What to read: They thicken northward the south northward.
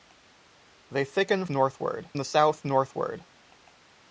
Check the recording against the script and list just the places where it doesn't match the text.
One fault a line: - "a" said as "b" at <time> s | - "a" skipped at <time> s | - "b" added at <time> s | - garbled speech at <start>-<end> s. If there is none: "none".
none